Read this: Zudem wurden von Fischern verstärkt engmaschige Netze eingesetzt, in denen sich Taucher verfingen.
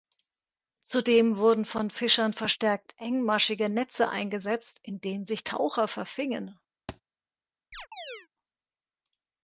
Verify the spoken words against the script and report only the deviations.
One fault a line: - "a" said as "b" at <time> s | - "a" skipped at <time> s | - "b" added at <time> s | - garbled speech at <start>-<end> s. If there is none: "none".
none